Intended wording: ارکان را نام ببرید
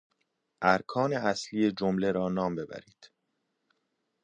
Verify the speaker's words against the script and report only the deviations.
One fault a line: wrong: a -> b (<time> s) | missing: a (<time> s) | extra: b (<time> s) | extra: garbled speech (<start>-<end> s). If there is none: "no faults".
extra: اصلی جمله (1.1 s)